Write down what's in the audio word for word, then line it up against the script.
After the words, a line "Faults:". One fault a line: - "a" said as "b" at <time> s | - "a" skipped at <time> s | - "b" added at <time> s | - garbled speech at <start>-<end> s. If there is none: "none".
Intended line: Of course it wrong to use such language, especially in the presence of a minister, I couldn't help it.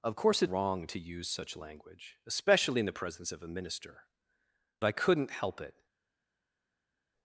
Of course it wrong to use such language, especially in the presence of a minister, I couldn't help it.
Faults:
none